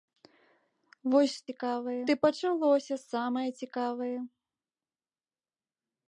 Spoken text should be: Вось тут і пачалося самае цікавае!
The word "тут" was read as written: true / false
false